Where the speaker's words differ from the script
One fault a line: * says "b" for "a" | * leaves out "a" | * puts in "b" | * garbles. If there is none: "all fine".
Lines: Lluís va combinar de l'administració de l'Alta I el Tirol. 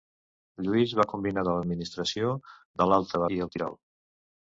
all fine